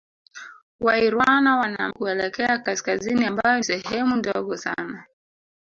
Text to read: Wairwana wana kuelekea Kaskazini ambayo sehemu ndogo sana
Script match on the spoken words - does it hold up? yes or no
yes